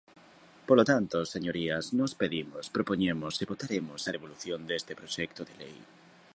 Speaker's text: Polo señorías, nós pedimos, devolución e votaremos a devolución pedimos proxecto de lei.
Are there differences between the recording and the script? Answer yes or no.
yes